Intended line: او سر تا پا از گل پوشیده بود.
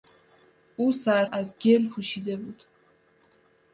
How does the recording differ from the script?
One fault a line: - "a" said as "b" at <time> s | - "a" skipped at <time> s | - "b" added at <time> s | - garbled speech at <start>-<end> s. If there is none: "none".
- "تا پا" skipped at 1.2 s